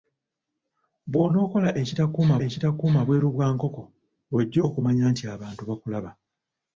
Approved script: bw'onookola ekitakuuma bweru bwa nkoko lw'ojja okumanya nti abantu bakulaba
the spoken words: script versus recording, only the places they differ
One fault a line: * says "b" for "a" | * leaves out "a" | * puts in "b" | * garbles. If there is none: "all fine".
* puts in "ekitakuuma"